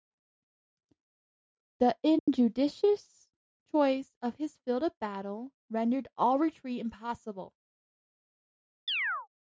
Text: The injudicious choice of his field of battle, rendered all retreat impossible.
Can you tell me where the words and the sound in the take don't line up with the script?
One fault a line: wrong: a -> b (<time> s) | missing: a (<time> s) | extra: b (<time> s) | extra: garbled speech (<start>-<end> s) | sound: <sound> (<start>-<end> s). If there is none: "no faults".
sound: dropout (2.2-2.3 s)
sound: chirp (8.9-9.3 s)